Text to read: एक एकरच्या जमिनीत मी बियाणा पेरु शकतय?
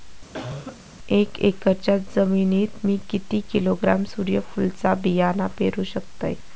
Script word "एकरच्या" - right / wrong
right